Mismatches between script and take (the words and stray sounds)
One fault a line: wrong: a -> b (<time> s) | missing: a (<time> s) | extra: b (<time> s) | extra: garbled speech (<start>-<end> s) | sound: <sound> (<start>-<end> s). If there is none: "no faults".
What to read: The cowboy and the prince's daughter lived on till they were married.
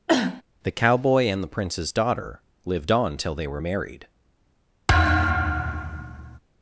sound: cough (0.1-0.4 s)
sound: thud (4.9-6.4 s)